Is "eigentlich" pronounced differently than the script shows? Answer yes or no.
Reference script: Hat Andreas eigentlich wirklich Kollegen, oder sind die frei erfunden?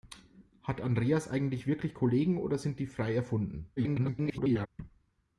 no